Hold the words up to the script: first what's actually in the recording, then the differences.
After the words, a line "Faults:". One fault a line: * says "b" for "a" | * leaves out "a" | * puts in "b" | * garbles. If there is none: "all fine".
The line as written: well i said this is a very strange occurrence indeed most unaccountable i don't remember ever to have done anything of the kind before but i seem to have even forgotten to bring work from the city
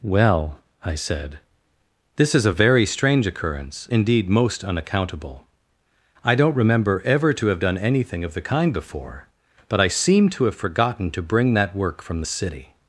well i said this is a very strange occurrence indeed most unaccountable i don't remember ever to have done anything of the kind before but i seem to have forgotten to bring that work from the city
Faults:
* leaves out "even"
* puts in "that"